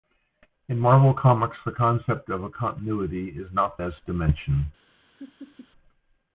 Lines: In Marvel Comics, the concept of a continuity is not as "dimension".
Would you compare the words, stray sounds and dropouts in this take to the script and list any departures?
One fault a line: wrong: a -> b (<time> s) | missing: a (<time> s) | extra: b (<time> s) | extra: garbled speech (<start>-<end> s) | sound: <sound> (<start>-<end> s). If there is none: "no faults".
sound: laugh (5.2-5.7 s)